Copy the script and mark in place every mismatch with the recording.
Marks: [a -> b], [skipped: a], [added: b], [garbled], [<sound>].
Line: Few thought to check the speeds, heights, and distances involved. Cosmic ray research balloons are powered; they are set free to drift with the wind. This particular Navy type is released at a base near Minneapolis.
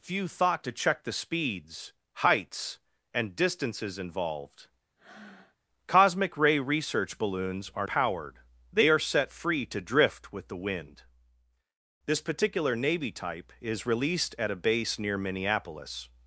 Few thought to check the speeds, heights, and distances involved. [breath] Cosmic ray research balloons are powered; they are set free to drift with the wind. This particular Navy type is released at a base near Minneapolis.